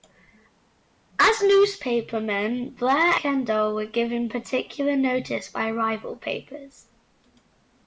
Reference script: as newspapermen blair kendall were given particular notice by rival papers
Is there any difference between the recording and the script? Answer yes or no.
no